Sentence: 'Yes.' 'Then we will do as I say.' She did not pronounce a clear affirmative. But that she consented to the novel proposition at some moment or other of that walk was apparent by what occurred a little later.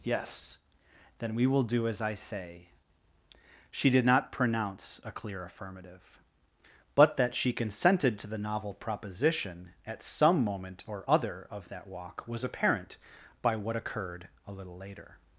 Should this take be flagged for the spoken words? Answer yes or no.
no